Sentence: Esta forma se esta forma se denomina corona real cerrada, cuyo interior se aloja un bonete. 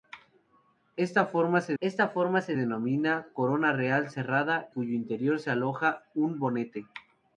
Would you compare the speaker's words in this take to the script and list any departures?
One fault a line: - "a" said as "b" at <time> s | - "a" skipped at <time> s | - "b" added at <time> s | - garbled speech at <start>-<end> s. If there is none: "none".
none